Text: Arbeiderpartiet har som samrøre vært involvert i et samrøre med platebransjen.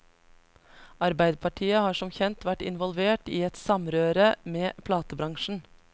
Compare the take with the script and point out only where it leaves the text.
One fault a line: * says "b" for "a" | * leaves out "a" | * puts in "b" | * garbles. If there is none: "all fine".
* says "kjent" for "samrøre"